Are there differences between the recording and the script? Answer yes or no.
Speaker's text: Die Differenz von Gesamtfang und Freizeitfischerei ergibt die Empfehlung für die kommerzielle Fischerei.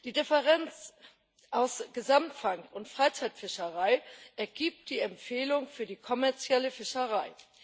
yes